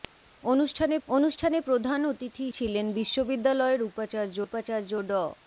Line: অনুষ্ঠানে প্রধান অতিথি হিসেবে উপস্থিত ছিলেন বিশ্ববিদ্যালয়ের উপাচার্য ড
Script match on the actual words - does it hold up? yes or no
no